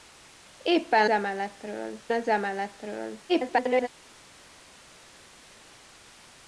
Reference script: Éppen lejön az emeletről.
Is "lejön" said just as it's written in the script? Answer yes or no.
no